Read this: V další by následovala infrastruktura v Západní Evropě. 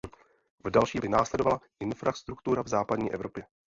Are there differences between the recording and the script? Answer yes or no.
no